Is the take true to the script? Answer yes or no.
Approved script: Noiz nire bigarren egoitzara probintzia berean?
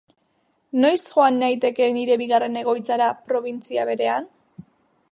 no